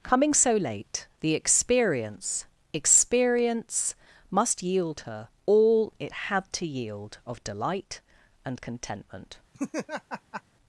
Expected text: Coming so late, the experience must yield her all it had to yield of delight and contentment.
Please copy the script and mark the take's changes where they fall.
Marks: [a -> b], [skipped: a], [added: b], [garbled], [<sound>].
Coming so late, the experience [added: experience] must yield her all it had to yield of delight and contentment. [laugh]